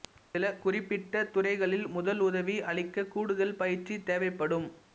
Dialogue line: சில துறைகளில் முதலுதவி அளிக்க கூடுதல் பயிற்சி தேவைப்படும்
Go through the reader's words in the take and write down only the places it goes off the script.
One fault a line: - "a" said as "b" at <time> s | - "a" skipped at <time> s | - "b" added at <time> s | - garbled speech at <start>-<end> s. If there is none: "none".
- "குறிப்பிட்ட" added at 0.6 s